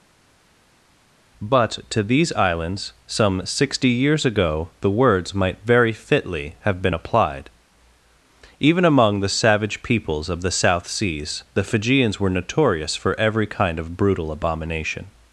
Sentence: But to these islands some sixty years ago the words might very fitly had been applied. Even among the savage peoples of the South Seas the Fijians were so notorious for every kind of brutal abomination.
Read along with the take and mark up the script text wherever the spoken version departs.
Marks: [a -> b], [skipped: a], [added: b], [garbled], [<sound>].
But to these islands some sixty years ago the words might very fitly [had -> have] been applied. Even among the savage peoples of the South Seas the Fijians were [skipped: so] notorious for every kind of brutal abomination.